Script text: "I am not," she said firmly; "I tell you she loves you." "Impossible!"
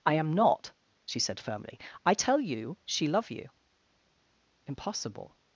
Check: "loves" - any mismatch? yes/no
yes